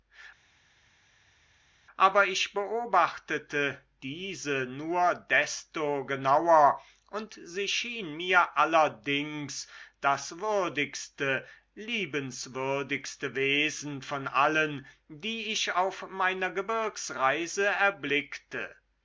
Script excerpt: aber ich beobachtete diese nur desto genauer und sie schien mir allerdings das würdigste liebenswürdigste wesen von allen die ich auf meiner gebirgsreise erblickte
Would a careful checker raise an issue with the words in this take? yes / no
no